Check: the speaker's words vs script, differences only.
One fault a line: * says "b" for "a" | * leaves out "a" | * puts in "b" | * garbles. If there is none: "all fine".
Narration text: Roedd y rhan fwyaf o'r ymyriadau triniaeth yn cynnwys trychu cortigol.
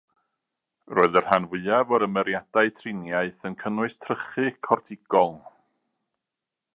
all fine